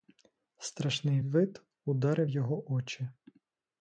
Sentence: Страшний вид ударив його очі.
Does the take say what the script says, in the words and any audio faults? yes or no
yes